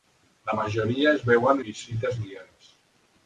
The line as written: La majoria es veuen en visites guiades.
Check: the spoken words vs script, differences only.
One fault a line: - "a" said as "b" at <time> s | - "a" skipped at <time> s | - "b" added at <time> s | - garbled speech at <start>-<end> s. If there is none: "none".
- "en" skipped at 1.6 s